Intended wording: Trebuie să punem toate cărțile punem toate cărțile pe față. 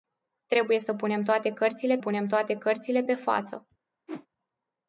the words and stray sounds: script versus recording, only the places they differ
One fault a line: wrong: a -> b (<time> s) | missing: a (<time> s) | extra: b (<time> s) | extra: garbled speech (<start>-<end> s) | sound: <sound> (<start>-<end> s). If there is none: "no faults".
sound: whoosh (4.1-4.3 s)